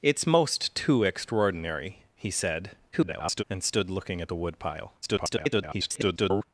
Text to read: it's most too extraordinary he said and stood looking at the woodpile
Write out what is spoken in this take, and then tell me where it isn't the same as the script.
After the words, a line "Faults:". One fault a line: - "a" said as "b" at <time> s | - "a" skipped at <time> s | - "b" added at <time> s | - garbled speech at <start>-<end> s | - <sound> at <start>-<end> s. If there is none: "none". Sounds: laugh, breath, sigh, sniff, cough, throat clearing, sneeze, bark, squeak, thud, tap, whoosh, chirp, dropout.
it's most too extraordinary he said [garbled] and stood looking at the woodpile [garbled]
Faults:
- garbled speech at 2.9-3.4 s
- garbled speech at 5.0-6.4 s